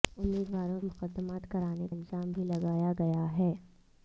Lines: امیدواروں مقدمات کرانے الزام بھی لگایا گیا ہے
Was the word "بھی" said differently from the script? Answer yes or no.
no